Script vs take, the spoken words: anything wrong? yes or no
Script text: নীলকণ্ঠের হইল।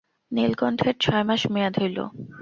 yes